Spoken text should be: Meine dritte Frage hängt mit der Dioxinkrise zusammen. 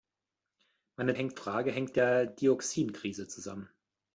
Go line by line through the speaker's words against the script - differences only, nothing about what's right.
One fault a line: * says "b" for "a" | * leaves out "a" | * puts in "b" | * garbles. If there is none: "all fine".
* says "hängt" for "dritte"
* leaves out "mit"